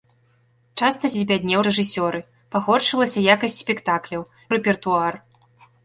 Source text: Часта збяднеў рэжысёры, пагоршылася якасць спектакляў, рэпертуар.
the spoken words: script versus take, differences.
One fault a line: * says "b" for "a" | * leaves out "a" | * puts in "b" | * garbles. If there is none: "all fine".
all fine